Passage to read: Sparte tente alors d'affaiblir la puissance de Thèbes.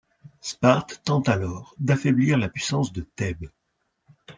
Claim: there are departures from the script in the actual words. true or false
false